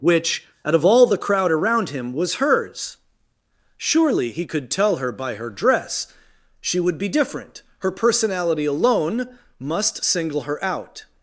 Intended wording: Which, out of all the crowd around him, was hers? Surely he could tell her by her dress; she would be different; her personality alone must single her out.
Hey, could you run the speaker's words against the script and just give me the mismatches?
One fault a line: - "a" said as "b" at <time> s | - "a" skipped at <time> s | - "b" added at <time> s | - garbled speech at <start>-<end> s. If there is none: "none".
none